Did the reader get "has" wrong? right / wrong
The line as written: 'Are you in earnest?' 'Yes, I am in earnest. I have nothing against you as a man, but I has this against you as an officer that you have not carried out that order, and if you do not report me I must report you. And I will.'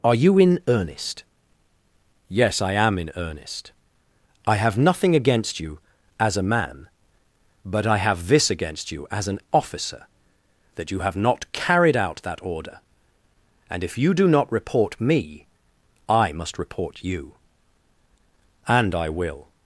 wrong